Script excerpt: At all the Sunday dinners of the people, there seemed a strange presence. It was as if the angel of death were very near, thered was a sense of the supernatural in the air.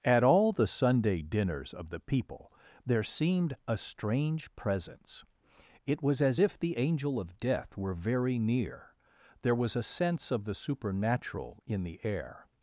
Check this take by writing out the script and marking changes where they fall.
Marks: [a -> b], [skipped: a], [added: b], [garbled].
At all the Sunday dinners of the people, there seemed a strange presence. It was as if the angel of death were very near, [thered -> there] was a sense of the supernatural in the air.